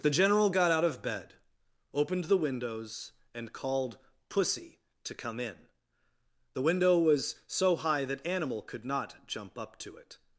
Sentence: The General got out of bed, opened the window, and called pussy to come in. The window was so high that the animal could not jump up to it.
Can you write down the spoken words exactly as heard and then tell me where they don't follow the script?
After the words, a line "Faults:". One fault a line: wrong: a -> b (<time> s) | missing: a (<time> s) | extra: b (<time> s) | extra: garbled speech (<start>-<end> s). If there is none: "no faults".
The General got out of bed, opened the windows, and called pussy to come in. The window was so high that animal could not jump up to it.
Faults:
wrong: window -> windows (2.4 s)
missing: the (8.3 s)